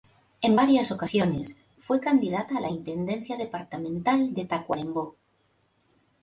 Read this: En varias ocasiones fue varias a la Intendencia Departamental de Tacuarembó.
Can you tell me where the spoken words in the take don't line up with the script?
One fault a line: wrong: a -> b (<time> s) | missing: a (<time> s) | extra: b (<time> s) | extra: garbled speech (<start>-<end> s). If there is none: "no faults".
wrong: varias -> candidata (2.0 s)